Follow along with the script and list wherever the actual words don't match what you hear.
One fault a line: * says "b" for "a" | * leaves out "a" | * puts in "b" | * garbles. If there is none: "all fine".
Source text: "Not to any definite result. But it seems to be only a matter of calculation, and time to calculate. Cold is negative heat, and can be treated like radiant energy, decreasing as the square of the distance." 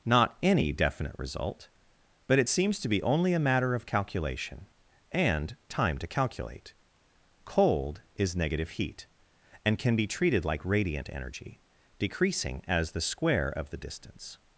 * leaves out "to"